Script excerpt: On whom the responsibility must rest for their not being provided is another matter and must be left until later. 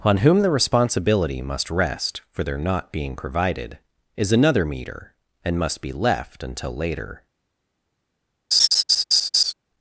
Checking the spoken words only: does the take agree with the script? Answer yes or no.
no